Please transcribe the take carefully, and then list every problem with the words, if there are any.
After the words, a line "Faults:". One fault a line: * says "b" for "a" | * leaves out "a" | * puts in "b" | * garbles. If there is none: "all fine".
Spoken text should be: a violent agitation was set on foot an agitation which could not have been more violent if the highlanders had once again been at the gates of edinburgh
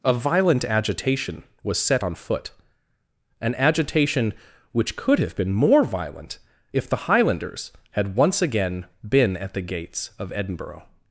a violent agitation was set on foot an agitation which could have been more violent if the highlanders had once again been at the gates of edinburgh
Faults:
* leaves out "not"